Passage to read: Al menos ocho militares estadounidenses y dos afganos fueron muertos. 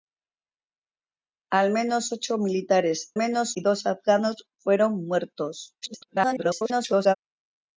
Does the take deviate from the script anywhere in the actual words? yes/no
yes